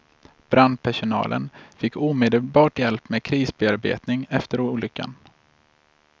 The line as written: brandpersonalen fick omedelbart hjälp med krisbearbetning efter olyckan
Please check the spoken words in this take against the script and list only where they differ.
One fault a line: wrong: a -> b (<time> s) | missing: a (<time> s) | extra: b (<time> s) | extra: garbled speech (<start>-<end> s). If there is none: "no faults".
no faults